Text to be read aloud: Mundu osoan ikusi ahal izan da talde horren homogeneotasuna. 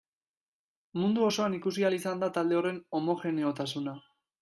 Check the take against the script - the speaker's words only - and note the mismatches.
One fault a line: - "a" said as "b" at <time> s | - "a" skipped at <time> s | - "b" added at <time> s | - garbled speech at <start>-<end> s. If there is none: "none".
none